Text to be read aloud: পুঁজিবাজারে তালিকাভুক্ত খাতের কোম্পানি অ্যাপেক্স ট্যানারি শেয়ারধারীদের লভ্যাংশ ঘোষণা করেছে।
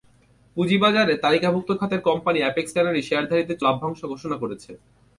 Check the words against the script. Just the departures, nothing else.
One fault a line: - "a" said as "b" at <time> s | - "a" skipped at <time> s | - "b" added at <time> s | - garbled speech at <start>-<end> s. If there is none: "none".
none